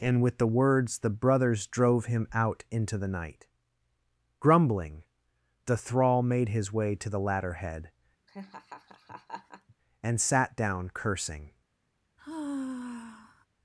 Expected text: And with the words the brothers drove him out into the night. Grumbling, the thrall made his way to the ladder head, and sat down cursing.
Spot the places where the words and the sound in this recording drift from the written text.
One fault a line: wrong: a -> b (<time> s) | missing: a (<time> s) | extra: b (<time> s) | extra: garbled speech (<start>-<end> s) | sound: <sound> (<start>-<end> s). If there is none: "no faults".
sound: laugh (8.3-9.7 s)
sound: sigh (12.2-13.5 s)